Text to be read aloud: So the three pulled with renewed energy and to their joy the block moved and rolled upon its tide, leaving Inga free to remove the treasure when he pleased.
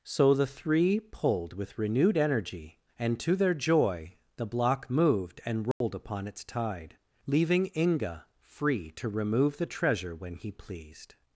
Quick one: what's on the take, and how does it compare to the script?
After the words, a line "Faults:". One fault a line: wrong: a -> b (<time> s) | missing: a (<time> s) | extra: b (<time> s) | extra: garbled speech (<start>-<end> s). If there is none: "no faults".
So the three pulled with renewed energy and to their joy the block moved and rolled upon its tide, leaving Inga free to remove the treasure when he pleased.
Faults:
no faults